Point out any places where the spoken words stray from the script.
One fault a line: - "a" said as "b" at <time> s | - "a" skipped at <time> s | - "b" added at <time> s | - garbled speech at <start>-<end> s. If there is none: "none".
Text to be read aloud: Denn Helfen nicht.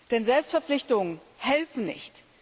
- "Selbstverpflichtungen" added at 0.2 s